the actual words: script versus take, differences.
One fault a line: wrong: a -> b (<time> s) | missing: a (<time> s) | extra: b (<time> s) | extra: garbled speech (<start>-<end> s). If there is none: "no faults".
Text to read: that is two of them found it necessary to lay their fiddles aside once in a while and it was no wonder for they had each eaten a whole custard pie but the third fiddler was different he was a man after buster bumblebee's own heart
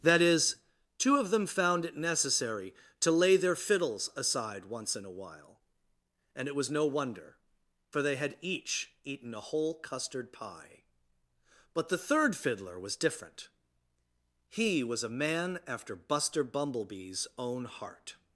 no faults